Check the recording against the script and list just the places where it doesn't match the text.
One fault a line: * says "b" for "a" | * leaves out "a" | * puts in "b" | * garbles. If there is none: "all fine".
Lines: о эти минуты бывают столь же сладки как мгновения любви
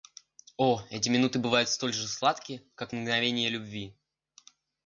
all fine